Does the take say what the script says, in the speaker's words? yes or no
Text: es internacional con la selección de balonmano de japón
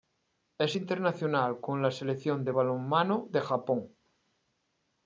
yes